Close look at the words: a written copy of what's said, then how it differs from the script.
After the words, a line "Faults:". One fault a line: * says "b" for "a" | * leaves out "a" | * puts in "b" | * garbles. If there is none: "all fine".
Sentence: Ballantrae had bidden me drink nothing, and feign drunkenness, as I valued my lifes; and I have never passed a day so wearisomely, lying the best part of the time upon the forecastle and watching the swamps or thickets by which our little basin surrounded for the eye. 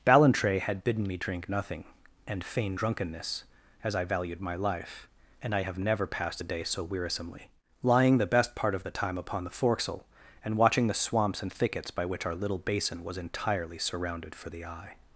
Ballantrae had bidden me drink nothing, and feign drunkenness, as I valued my life; and I have never passed a day so wearisomely, lying the best part of the time upon the forecastle and watching the swamps and thickets by which our little basin was entirely surrounded for the eye.
Faults:
* says "life" for "lifes"
* says "and" for "or"
* puts in "was entirely"